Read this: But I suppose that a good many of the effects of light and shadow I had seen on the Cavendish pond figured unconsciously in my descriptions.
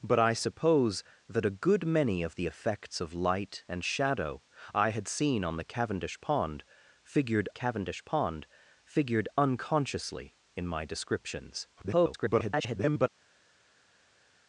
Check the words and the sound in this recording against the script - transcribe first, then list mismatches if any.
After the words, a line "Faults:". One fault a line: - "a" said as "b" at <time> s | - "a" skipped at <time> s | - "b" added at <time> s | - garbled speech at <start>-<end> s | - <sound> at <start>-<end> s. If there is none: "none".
But I suppose that a good many of the effects of light and shadow I had seen on the Cavendish pond figured Cavendish pond figured unconsciously in my descriptions. [garbled]
Faults:
- "Cavendish pond figured" added at 7.5 s
- garbled speech at 11.8-13.1 s